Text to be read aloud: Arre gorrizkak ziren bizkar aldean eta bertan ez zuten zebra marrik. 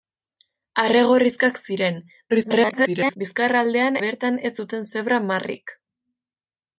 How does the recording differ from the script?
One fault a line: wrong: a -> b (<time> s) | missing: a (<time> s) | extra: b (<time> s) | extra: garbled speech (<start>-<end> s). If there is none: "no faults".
extra: garbled speech (2.3-3.2 s)
missing: eta (4.0 s)